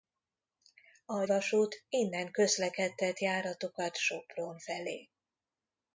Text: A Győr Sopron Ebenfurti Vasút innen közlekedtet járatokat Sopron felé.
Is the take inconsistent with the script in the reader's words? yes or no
yes